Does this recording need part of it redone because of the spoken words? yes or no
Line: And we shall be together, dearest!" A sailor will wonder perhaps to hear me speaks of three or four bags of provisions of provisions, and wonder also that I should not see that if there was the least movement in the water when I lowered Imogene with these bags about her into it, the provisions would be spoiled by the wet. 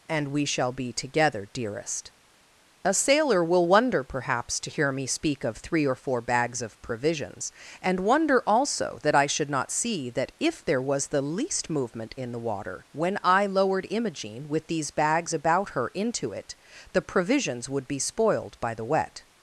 yes